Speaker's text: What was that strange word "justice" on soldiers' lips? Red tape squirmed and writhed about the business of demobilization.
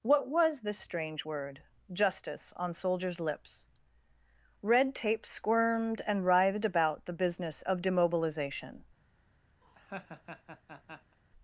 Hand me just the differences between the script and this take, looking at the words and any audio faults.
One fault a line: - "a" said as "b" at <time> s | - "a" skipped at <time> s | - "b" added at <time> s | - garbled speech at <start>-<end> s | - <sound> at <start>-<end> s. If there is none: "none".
- "that" said as "this" at 0.6 s
- laugh at 9.6-11.2 s